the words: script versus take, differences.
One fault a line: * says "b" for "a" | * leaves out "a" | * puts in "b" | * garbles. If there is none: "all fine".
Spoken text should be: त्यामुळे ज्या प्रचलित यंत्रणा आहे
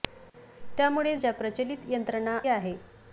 all fine